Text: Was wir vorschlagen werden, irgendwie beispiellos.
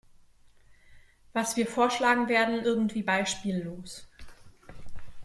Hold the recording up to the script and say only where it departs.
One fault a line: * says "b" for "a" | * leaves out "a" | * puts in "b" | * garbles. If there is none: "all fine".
all fine